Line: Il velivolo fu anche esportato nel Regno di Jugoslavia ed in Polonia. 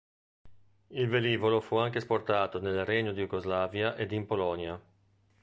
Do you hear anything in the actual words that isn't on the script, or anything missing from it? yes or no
no